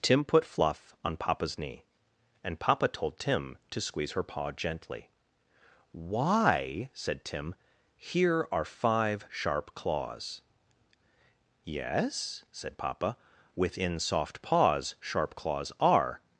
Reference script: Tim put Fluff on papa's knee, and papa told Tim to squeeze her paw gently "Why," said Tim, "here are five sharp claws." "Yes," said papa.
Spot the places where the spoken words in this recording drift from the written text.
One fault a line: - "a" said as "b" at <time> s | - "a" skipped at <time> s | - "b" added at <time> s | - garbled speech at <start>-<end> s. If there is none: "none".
- "Within soft paws sharp claws are" added at 13.5 s